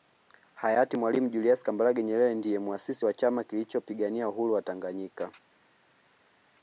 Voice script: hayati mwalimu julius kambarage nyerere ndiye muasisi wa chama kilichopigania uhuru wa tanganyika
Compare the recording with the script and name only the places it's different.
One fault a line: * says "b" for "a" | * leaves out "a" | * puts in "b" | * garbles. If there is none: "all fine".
all fine